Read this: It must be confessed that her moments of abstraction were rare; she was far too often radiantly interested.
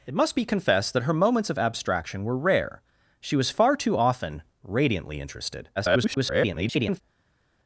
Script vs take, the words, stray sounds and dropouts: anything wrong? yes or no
yes